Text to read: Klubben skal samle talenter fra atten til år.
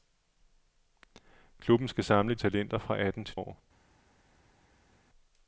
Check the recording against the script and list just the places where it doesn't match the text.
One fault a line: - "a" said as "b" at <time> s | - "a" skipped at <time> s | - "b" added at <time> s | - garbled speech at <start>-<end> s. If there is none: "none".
none